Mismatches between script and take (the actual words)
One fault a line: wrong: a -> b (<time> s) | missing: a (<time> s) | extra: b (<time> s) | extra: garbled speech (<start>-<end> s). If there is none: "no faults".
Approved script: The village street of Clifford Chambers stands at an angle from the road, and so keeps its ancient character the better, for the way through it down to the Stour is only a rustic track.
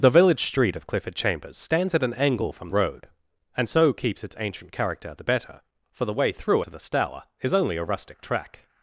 missing: the (2.7 s)
missing: it down (6.6 s)